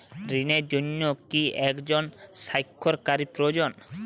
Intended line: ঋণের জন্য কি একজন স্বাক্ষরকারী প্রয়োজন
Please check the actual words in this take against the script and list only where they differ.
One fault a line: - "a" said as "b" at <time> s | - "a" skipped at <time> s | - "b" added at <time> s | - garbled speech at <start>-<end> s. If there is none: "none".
none